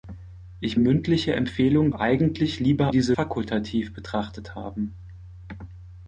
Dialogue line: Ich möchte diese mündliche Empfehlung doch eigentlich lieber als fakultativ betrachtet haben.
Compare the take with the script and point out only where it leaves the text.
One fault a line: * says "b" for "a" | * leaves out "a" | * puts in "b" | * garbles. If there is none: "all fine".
* leaves out "möchte diese"
* leaves out "doch"
* says "diese" for "als"